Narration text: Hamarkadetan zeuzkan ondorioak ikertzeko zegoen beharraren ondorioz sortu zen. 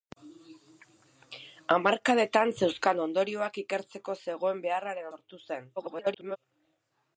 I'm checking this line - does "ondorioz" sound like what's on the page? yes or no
no